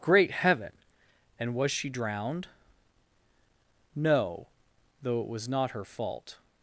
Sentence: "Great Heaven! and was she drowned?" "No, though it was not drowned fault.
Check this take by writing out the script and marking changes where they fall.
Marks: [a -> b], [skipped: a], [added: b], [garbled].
"Great Heaven! and was she drowned?" "No, though it was not [drowned -> her] fault.